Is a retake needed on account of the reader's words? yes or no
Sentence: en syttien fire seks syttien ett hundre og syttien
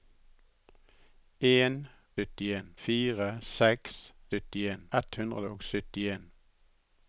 no